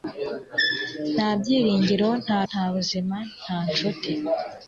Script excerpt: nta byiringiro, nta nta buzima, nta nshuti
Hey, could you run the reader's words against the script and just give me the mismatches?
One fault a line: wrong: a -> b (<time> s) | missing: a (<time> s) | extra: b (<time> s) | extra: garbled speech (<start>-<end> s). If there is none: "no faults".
no faults